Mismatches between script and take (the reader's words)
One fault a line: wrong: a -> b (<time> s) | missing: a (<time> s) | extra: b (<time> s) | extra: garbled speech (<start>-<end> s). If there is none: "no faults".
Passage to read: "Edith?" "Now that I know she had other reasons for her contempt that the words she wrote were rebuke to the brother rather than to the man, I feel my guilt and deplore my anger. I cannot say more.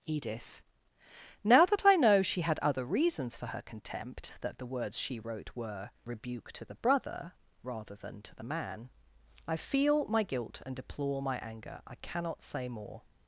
no faults